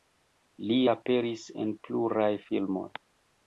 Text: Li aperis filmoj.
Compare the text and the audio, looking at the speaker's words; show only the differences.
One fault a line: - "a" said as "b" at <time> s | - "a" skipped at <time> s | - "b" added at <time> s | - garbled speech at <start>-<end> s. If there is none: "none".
- "en pluraj" added at 1.6 s